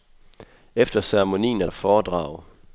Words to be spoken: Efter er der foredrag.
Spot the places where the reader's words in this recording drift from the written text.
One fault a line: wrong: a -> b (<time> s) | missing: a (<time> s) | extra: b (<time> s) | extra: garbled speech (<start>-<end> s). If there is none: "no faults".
extra: ceremonien (1.0 s)